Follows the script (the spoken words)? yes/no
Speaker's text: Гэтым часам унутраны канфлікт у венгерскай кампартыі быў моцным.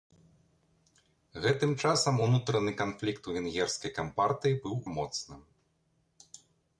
yes